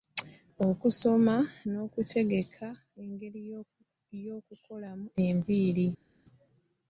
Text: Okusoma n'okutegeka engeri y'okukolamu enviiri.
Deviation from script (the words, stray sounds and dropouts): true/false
false